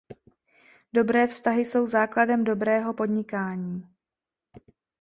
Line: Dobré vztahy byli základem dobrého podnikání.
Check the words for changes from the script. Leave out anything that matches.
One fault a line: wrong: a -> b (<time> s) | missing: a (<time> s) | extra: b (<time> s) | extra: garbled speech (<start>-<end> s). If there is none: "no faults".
wrong: byli -> jsou (1.6 s)